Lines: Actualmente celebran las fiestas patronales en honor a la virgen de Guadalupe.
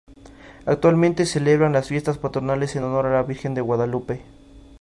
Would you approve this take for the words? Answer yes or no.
yes